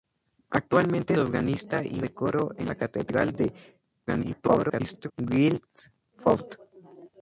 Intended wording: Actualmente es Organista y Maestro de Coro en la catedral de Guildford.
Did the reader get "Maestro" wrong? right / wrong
wrong